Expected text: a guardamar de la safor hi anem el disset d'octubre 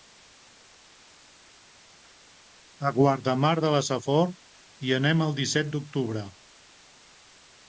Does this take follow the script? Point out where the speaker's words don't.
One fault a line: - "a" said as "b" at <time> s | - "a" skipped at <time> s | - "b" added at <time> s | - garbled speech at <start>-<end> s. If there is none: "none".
none